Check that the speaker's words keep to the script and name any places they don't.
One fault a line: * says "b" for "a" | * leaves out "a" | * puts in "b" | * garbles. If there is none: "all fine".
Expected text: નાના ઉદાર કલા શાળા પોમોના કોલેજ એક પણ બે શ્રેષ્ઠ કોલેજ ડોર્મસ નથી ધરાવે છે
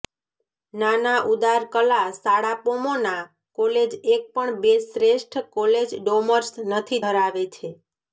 all fine